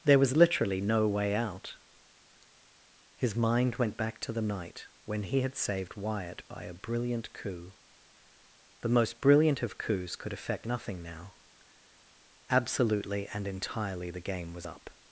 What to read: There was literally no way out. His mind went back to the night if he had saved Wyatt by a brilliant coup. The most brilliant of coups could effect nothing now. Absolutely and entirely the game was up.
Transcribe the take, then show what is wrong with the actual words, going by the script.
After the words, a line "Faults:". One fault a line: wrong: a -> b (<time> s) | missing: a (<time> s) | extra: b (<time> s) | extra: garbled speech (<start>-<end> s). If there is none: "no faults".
There was literally no way out. His mind went back to the night when he had saved Wyatt by a brilliant coup. The most brilliant of coups could effect nothing now. Absolutely and entirely the game was up.
Faults:
wrong: if -> when (5.0 s)